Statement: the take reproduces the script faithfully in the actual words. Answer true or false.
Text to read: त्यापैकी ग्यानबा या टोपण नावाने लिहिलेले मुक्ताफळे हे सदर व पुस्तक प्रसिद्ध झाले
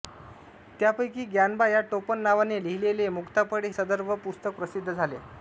false